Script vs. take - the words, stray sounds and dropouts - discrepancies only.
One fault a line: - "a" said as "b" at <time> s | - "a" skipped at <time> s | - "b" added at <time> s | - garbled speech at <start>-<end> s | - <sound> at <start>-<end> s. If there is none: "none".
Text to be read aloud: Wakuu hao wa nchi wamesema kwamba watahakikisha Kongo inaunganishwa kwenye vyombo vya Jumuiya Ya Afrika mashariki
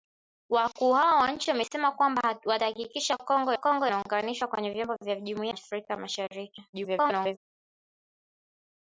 - "Kongo" added at 3.5 s
- "Ya" skipped at 5.6 s
- garbled speech at 6.7-7.4 s